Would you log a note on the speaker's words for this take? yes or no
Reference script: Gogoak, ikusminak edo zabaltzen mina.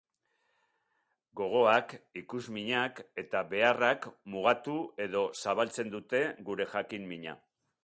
yes